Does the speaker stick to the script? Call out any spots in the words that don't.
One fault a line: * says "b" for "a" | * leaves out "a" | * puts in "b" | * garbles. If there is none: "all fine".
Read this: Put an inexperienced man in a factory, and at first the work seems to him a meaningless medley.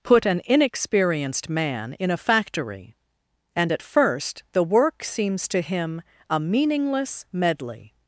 all fine